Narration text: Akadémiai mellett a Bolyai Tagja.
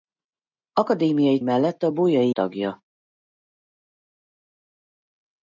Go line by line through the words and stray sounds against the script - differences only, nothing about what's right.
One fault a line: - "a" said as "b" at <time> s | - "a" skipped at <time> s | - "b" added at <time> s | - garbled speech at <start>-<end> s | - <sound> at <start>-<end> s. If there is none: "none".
none